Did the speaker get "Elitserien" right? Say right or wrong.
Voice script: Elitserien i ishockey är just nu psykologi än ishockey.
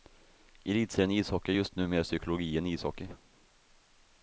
right